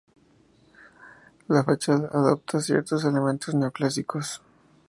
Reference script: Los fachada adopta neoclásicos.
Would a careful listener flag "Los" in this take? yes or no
yes